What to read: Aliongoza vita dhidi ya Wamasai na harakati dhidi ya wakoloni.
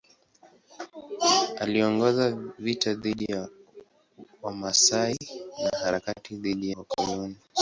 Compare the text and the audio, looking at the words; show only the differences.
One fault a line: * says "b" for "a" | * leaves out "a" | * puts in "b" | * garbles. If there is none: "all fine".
* leaves out "ya"